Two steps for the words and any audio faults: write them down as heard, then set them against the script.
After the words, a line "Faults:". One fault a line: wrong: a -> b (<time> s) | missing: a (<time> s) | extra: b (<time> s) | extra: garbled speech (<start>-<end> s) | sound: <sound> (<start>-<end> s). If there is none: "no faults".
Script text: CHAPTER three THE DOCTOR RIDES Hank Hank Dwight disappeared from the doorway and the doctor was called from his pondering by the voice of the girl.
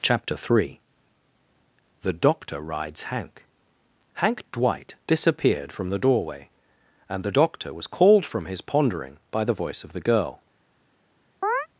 CHAPTER three THE DOCTOR RIDES Hank Hank Dwight disappeared from the doorway and the doctor was called from his pondering by the voice of the girl.
Faults:
sound: chirp (11.4-11.7 s)